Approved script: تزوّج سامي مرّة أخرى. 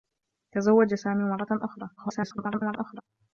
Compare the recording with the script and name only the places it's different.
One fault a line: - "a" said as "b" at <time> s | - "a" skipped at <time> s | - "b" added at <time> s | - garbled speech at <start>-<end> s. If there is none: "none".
- garbled speech at 2.0-3.0 s